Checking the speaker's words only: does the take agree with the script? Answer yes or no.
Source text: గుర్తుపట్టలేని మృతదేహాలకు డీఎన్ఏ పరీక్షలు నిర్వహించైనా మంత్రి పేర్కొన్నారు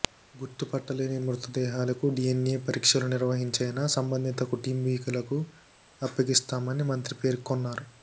no